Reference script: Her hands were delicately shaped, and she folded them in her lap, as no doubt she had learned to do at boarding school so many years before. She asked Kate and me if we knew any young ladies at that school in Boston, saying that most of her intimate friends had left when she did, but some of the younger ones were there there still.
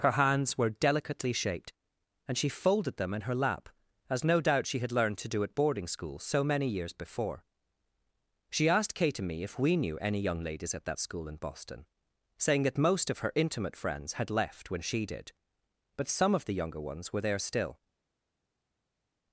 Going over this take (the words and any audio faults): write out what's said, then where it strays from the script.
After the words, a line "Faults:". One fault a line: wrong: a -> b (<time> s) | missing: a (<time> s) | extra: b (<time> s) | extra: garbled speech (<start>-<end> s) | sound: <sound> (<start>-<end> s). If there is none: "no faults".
Her hands were delicately shaped, and she folded them in her lap, as no doubt she had learned to do at boarding school so many years before. She asked Kate and me if we knew any young ladies at that school in Boston, saying that most of her intimate friends had left when she did, but some of the younger ones were there still.
Faults:
missing: there (17.4 s)